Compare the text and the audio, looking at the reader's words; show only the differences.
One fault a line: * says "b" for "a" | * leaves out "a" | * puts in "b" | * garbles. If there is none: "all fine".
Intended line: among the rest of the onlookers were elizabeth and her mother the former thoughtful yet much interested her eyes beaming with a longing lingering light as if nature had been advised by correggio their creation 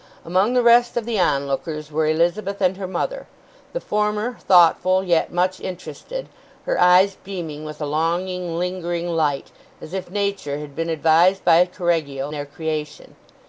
all fine